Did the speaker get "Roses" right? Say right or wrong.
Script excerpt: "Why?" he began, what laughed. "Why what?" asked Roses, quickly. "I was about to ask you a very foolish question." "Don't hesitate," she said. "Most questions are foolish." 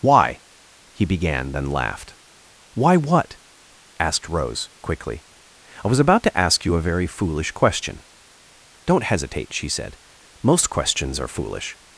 wrong